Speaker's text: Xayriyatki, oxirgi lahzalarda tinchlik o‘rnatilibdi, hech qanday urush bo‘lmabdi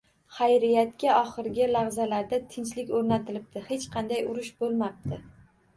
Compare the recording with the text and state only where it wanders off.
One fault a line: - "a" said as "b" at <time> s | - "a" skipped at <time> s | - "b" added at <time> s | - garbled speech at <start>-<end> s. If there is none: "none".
none